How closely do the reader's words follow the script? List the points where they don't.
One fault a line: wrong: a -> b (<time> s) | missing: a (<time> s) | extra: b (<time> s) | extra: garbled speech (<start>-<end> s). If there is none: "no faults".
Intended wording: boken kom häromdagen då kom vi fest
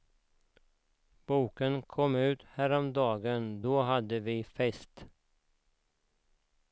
extra: ut (2.1 s)
wrong: kom -> hade (3.8 s)